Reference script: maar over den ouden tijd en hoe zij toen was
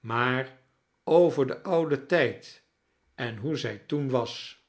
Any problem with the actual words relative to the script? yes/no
no